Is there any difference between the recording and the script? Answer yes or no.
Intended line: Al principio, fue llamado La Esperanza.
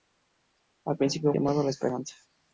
yes